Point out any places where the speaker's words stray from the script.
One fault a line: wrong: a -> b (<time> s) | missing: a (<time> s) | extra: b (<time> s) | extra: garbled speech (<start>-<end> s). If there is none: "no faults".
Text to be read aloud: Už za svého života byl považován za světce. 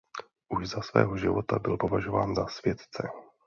no faults